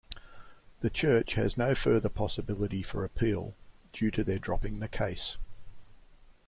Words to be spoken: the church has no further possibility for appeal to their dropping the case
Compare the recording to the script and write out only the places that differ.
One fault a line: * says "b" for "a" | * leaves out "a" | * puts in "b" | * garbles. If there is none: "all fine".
* puts in "due"